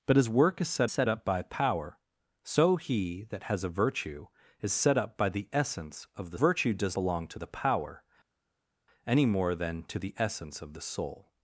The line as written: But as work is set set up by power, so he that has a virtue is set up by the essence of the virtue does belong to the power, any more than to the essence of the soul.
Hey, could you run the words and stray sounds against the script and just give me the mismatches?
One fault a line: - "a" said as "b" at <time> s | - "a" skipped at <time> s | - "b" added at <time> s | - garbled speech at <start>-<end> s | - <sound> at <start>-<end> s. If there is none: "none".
none